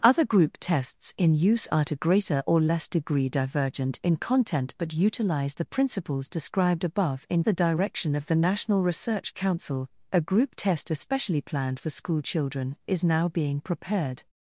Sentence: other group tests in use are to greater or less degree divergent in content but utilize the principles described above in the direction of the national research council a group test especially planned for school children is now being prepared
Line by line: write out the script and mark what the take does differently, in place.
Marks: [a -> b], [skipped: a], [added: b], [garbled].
other group tests in use are to greater or less degree divergent in content but utilize the principles described above in the direction of the national research council a group test especially planned for school children is now being prepared